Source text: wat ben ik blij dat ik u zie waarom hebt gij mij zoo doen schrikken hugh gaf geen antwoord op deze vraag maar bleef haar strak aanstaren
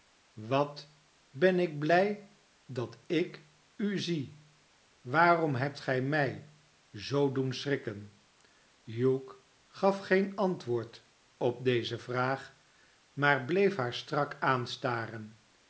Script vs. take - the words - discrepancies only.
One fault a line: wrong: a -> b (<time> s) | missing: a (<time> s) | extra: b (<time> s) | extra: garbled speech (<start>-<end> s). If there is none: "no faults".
no faults